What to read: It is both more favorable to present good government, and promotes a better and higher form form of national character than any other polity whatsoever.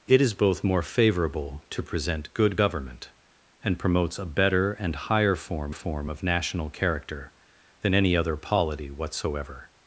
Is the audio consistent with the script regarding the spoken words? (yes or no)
yes